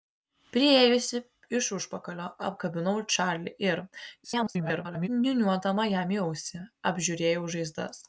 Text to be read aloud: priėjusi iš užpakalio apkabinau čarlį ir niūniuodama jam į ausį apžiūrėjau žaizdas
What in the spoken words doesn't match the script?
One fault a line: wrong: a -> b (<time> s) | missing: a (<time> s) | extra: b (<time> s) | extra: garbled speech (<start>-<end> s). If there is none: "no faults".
extra: garbled speech (4.2-5.1 s)